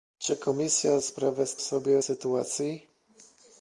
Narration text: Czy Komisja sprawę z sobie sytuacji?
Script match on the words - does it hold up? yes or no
yes